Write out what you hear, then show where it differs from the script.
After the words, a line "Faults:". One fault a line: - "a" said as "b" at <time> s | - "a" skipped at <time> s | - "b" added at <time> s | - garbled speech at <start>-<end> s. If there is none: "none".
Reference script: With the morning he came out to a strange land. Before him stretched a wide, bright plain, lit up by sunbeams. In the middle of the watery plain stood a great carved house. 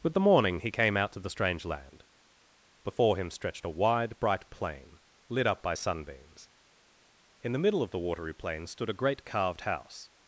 With the morning he came out to the strange land. Before him stretched a wide, bright plain, lit up by sunbeams. In the middle of the watery plain stood a great carved house.
Faults:
- "a" said as "the" at 1.2 s